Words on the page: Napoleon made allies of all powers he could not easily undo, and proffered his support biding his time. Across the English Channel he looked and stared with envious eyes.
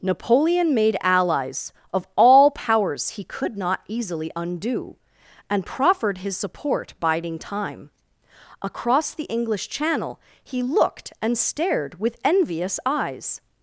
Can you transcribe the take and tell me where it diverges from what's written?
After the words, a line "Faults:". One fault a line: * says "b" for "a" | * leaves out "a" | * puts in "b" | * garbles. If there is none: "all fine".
Napoleon made allies of all powers he could not easily undo, and proffered his support biding time. Across the English Channel he looked and stared with envious eyes.
Faults:
* leaves out "his"